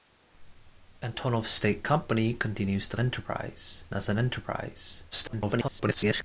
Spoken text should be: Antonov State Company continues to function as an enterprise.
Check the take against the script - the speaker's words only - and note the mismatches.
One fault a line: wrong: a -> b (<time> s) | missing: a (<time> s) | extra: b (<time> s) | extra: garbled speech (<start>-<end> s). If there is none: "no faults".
wrong: function -> enterprise (3.0 s)
extra: garbled speech (5.1-6.2 s)